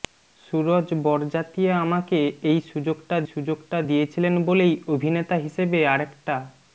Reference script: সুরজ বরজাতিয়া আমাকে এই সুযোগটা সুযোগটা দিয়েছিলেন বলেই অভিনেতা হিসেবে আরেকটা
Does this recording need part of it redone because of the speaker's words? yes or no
no